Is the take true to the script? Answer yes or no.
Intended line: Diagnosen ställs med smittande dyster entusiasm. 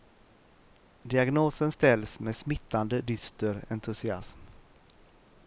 yes